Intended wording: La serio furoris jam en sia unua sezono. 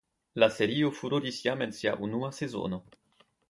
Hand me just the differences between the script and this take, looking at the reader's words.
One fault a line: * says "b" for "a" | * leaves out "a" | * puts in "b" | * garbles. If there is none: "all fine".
all fine